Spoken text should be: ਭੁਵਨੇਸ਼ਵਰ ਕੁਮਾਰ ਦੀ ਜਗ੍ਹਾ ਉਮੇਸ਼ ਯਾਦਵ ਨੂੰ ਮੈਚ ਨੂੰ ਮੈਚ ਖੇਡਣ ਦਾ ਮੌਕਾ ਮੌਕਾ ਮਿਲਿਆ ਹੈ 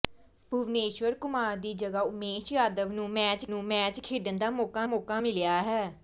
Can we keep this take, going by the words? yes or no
yes